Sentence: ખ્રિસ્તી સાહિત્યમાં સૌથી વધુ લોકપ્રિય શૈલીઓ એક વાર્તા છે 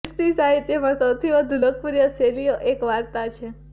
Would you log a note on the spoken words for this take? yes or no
no